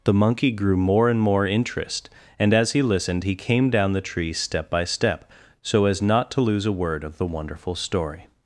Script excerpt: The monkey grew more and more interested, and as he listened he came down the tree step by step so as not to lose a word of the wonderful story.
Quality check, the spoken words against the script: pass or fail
fail